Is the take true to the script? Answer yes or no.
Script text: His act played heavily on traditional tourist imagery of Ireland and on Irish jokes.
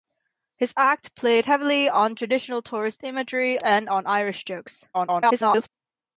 no